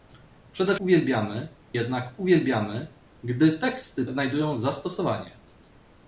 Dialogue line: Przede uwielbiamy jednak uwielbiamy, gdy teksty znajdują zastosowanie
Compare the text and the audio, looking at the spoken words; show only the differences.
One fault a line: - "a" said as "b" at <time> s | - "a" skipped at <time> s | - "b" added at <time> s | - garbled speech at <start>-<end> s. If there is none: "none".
none